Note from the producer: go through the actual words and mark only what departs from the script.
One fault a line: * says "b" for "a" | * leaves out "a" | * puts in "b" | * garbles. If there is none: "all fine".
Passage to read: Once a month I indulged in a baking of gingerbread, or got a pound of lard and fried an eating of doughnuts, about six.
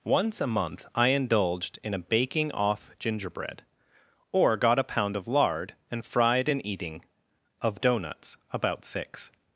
* says "off" for "of"